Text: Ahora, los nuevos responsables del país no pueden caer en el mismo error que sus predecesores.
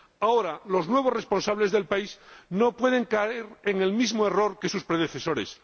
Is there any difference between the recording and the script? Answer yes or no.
no